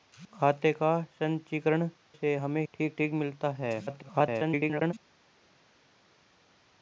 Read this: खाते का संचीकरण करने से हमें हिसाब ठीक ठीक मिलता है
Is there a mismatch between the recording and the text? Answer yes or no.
yes